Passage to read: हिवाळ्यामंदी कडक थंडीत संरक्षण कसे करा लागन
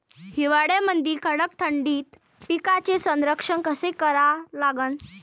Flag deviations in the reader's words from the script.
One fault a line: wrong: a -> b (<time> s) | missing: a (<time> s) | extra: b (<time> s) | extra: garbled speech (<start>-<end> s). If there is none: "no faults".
extra: पिकाचे (2.5 s)